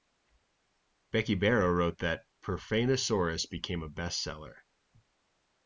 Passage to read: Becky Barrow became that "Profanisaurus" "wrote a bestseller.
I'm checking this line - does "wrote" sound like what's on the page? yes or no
no